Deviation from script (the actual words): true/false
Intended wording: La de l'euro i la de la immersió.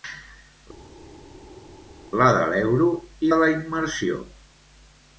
true